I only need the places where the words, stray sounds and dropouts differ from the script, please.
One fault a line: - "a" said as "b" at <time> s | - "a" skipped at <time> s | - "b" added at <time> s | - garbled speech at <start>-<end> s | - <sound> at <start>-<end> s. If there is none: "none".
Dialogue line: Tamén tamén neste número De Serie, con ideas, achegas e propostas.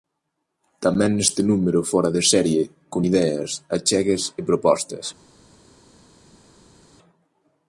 - "tamén" skipped at 1.1 s
- "Fóra" added at 1.9 s